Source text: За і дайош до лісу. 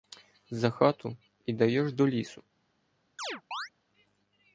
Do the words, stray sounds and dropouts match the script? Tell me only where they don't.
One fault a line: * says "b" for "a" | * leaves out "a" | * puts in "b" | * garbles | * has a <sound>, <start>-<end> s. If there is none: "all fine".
* puts in "хату"
* has a chirp, 3.2-3.7 s